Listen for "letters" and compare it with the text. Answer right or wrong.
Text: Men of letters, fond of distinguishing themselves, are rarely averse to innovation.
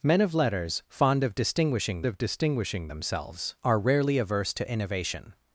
right